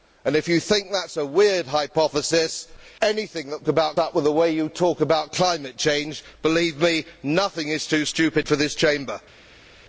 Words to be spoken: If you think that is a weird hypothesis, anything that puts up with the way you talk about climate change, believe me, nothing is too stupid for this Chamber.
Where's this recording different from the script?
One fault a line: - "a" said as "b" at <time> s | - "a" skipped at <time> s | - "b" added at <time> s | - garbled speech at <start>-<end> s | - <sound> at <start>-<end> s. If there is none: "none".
- "puts" said as "about" at 3.7 s